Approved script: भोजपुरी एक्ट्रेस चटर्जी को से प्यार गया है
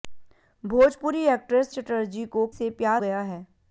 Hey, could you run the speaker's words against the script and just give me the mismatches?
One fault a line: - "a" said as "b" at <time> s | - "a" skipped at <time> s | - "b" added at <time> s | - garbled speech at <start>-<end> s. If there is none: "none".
none